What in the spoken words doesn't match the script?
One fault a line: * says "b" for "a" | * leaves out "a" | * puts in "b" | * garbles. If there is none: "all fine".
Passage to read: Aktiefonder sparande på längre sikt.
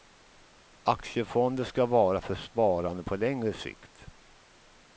* puts in "ska vara för"